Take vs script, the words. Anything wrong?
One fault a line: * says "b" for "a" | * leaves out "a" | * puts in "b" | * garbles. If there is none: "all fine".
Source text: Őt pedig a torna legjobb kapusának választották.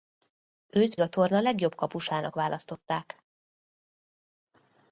* leaves out "pedig"